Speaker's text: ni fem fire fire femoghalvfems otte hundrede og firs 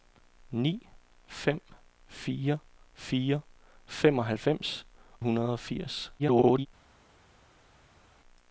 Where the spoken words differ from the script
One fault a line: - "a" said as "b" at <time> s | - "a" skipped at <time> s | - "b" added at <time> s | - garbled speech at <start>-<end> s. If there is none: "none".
- "otte" skipped at 4.8 s
- garbled speech at 6.2-6.7 s